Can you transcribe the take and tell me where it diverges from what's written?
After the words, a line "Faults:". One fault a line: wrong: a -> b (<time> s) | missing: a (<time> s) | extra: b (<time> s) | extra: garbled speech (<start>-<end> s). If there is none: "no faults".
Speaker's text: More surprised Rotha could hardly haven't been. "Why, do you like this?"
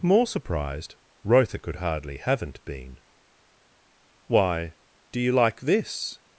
More surprised Rotha could hardly haven't been. "Why, do you like this?"
Faults:
no faults